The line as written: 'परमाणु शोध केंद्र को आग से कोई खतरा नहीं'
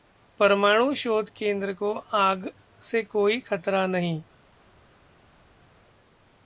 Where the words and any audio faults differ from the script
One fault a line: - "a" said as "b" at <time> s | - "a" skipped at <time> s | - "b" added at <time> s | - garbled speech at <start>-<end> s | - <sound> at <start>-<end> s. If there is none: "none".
none